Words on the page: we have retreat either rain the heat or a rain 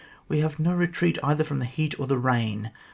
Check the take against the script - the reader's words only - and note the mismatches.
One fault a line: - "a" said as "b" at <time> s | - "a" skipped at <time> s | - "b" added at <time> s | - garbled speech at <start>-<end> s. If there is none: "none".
- "no" added at 0.6 s
- "rain" said as "from" at 1.4 s
- "a" said as "the" at 2.1 s